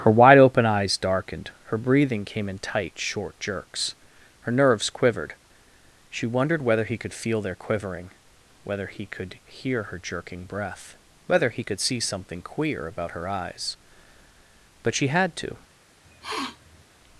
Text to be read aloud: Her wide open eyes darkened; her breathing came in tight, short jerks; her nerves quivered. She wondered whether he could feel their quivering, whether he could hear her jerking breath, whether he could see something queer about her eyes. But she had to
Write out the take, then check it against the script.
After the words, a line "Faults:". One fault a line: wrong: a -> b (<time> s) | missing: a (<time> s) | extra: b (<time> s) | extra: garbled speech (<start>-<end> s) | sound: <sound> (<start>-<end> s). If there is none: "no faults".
Her wide open eyes darkened; her breathing came in tight, short jerks; her nerves quivered. She wondered whether he could feel their quivering, whether he could hear her jerking breath, whether he could see something queer about her eyes. But she had to
Faults:
sound: sniff (16.0-16.8 s)